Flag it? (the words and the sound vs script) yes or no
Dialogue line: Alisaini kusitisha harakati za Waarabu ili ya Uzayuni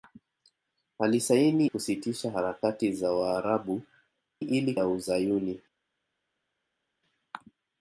no